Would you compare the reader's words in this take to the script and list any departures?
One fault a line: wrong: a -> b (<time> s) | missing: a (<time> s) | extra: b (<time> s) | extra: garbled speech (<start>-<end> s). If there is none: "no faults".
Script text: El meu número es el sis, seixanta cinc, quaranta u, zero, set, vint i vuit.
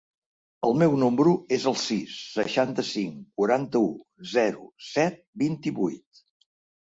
no faults